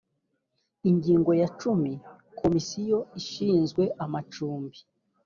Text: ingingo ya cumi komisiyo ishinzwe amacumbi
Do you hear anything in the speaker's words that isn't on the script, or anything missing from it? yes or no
no